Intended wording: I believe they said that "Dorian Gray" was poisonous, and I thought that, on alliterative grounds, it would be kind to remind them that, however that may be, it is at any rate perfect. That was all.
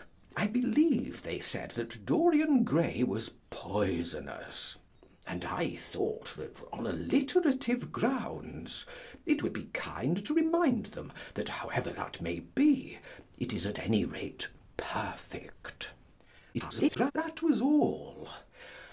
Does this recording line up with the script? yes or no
no